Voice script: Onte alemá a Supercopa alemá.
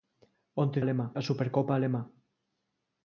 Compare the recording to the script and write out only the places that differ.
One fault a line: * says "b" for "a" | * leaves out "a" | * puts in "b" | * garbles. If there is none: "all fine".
all fine